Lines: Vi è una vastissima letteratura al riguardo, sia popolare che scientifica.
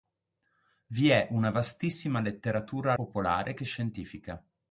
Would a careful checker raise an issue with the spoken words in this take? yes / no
yes